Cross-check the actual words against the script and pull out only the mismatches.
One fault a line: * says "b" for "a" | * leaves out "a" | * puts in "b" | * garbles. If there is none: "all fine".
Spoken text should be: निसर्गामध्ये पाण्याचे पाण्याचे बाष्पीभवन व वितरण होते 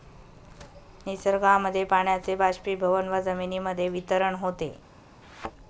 * leaves out "पाण्याचे"
* puts in "जमिनीमध्ये"